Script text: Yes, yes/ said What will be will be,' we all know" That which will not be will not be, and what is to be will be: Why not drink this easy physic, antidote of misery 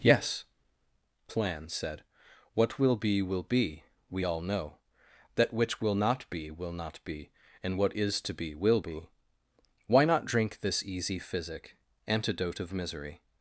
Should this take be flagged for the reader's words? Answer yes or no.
yes